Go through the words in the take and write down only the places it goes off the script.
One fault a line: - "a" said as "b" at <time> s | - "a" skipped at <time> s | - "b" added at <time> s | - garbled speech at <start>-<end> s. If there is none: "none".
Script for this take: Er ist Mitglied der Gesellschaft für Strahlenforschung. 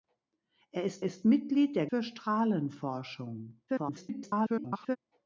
- "ist" added at 1.0 s
- "Gesellschaft" skipped at 1.9 s
- garbled speech at 3.7-5.0 s